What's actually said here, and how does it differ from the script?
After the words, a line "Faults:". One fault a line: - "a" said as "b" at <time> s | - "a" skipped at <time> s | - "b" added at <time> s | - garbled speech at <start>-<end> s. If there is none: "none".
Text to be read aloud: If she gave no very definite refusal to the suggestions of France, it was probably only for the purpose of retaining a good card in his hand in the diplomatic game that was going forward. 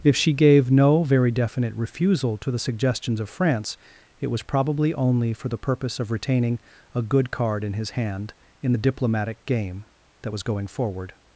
If she gave no very definite refusal to the suggestions of France, it was probably only for the purpose of retaining a good card in his hand in the diplomatic game that was going forward.
Faults:
none